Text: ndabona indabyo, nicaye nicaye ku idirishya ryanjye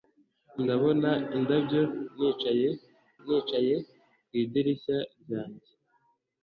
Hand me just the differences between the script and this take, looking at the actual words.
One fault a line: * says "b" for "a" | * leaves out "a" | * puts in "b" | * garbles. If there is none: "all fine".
all fine